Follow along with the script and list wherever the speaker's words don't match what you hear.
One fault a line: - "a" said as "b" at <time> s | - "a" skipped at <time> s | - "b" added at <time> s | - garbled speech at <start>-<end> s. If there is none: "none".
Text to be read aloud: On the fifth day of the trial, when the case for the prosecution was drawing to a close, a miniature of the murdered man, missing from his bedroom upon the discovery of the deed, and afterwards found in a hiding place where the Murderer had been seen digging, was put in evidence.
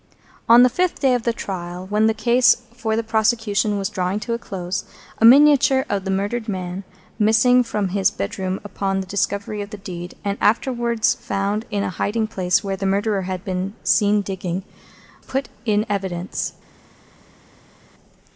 - "was" skipped at 14.6 s